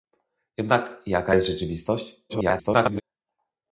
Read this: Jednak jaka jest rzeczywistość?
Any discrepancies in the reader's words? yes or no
yes